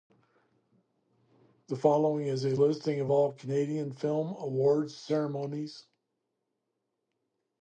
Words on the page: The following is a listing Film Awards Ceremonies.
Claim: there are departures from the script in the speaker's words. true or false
true